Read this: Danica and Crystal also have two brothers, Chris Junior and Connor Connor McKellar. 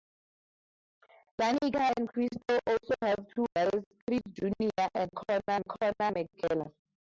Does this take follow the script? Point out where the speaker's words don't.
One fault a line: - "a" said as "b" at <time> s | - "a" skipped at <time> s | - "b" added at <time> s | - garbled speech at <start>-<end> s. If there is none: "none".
none